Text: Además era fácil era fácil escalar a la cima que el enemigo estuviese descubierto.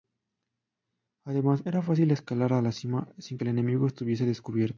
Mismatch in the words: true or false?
true